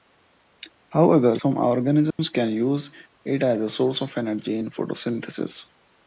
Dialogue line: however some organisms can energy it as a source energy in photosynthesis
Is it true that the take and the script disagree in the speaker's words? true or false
true